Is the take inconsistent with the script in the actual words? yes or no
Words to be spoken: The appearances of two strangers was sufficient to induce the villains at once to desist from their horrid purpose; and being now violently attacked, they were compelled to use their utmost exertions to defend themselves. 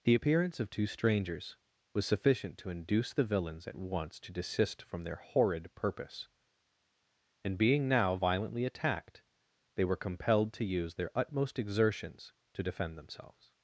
yes